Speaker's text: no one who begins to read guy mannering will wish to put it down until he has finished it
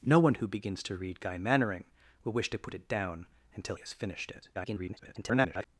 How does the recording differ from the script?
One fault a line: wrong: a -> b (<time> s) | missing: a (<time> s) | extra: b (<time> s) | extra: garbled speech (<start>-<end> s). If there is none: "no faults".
missing: he (3.8 s)
extra: garbled speech (4.5-5.7 s)